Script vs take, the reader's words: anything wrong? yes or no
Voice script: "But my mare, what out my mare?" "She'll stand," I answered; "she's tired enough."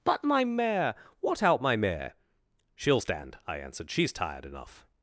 no